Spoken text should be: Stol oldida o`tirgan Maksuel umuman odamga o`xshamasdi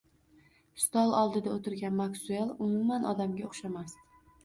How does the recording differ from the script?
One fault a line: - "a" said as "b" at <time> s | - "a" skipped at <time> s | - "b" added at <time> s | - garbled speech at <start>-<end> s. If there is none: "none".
none